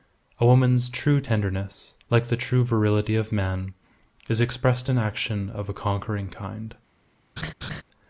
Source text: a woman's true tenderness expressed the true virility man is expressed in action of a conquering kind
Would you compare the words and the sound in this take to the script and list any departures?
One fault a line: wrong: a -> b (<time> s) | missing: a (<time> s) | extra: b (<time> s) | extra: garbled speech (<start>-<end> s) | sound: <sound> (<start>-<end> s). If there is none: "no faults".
wrong: expressed -> like (2.1 s)
extra: of (3.2 s)
sound: laugh (7.4-7.8 s)